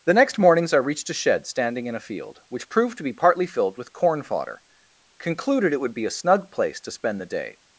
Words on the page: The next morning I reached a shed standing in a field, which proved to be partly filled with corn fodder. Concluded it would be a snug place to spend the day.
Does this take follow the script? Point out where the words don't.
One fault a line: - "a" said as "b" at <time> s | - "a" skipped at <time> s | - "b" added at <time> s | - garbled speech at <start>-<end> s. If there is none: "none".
- "morning" said as "mornings" at 0.4 s